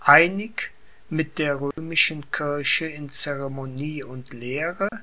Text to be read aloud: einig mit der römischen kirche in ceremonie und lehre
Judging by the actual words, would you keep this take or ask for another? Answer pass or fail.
pass